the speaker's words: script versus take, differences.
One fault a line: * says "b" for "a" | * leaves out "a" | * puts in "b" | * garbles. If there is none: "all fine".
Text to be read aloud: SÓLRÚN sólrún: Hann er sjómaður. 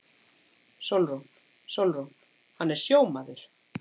all fine